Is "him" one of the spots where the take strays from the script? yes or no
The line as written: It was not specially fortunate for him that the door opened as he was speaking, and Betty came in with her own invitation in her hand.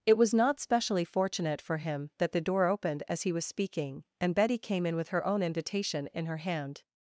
no